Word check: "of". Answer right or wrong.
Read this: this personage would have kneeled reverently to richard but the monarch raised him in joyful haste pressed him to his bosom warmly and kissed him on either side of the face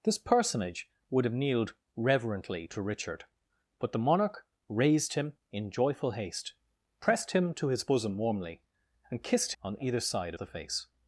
wrong